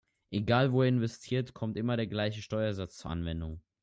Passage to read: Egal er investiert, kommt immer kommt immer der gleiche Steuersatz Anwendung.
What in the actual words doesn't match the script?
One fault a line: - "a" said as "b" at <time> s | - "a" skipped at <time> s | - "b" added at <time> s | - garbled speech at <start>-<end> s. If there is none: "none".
- "wo" added at 0.7 s
- "kommt immer" skipped at 2.0 s
- "zur" added at 3.0 s